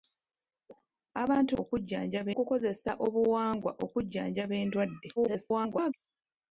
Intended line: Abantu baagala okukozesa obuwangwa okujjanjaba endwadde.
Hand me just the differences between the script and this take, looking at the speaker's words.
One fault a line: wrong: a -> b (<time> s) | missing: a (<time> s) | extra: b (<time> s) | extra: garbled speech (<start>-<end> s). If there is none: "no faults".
wrong: baagala -> okujjanjaba (1.6 s)
extra: garbled speech (5.2-5.9 s)